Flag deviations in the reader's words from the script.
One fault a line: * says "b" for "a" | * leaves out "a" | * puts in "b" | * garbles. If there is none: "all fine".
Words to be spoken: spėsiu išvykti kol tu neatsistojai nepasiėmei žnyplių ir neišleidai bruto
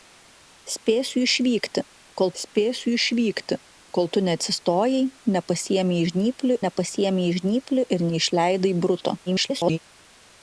* puts in "spėsiu išvykti kol"
* puts in "nepasiėmei žnyplių"
* garbles